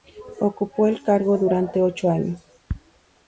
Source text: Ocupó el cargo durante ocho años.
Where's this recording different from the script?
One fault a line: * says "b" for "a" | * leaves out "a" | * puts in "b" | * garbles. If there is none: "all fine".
all fine